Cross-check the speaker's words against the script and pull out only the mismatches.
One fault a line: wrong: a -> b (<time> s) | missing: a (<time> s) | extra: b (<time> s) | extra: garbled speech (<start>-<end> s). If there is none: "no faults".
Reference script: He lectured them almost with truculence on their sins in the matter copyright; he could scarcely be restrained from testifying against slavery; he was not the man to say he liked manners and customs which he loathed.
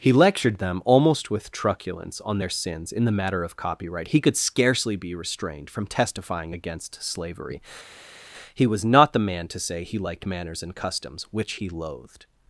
extra: of (3.4 s)